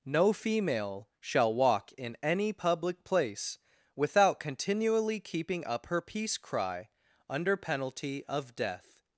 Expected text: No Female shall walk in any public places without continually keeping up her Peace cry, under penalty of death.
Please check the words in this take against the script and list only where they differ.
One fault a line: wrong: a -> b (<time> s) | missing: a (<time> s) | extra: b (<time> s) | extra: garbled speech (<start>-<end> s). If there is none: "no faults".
wrong: places -> place (3.0 s)